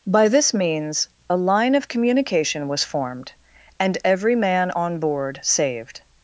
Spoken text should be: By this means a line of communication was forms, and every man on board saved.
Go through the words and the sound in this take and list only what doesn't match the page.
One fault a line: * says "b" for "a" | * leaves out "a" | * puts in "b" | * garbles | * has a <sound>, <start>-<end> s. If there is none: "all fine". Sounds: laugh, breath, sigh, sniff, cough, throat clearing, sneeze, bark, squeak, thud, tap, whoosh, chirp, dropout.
* says "formed" for "forms"